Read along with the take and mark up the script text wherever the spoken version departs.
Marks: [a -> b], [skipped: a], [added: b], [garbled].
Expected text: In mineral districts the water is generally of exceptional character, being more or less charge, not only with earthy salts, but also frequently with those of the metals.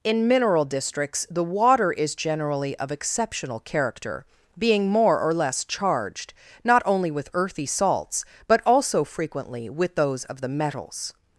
In mineral districts the water is generally of exceptional character, being more or less [charge, -> charged] not only with earthy salts, but also frequently with those of the metals.